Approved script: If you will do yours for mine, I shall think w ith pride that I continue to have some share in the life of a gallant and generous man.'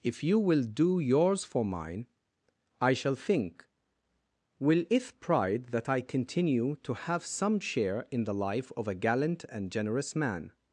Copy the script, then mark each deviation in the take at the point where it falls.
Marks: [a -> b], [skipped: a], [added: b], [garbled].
If you will do yours for mine, I shall think [w ith -> will it] pride that I continue to have some share in the life of a gallant and generous man.'